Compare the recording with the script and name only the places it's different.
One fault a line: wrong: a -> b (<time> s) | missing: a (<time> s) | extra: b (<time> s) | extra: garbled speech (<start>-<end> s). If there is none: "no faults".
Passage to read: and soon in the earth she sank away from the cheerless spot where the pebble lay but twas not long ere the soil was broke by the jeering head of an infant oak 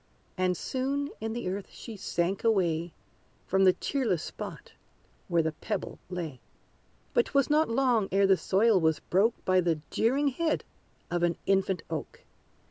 no faults